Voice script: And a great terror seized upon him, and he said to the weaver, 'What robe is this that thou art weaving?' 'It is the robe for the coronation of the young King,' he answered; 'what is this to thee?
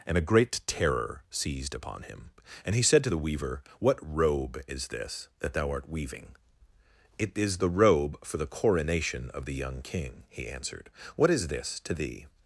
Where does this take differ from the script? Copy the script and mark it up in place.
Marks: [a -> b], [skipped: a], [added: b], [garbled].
And a great terror seized upon him, and he said to the weaver, 'What robe is this that thou art weaving?' 'It is the robe for the coronation of the young King,' he answered; 'what is this to thee?